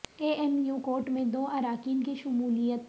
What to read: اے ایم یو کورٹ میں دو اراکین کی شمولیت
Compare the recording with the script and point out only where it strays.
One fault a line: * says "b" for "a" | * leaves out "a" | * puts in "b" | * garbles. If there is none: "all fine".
all fine